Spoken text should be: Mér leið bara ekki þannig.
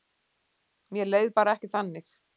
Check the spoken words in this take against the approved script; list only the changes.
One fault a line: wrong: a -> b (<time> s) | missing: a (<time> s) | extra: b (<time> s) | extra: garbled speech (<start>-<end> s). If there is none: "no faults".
no faults